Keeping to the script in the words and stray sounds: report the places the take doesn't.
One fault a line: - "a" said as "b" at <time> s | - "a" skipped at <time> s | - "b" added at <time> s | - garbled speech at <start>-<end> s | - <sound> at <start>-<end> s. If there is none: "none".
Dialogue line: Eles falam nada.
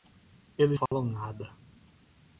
- dropout at 0.9-0.9 s